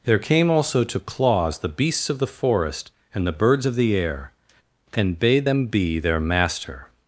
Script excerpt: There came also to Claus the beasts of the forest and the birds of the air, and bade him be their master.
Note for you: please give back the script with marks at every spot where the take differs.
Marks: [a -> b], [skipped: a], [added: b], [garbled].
There came also to Claus the beasts of the forest and the birds of the air, and bade [him -> them] be their master.